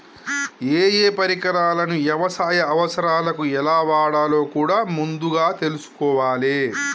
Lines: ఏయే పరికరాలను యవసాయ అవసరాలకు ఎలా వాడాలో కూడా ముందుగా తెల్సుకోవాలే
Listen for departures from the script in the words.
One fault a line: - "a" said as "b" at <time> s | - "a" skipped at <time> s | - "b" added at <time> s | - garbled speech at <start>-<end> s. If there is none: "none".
none